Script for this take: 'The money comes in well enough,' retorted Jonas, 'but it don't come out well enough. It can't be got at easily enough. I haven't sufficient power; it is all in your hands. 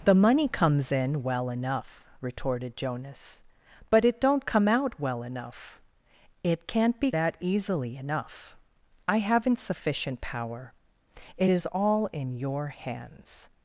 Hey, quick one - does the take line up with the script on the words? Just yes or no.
no